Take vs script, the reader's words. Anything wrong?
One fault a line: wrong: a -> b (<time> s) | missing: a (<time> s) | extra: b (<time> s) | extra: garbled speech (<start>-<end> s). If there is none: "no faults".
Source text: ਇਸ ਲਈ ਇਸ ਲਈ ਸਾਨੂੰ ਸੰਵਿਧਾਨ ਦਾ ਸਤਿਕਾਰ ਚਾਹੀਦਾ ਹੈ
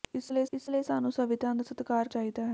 no faults